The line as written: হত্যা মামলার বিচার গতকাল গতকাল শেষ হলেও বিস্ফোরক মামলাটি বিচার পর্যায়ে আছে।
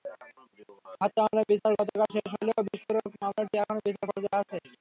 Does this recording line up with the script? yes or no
no